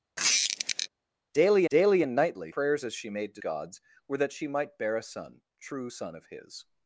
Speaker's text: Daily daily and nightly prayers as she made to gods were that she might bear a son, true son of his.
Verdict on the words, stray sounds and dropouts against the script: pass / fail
fail